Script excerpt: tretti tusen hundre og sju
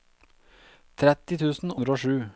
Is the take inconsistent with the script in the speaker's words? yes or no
no